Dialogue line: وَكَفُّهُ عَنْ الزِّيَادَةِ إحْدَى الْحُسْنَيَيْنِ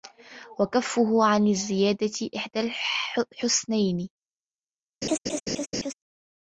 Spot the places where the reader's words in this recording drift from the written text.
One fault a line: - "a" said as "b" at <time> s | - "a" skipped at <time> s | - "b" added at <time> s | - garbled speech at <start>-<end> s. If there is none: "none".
none